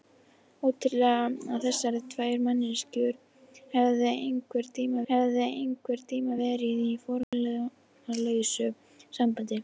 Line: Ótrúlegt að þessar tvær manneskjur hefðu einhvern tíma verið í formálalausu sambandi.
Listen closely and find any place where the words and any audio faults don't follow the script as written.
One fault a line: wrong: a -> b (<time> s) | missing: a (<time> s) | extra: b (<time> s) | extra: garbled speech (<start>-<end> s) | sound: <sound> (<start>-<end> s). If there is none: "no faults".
extra: hefðu einhvern tíma (5.1 s)
sound: dropout (7.2-7.3 s)